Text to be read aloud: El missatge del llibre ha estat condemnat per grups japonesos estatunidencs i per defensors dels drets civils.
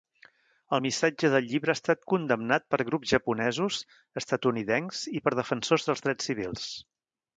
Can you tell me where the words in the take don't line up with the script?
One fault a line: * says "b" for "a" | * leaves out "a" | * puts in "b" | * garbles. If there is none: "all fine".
all fine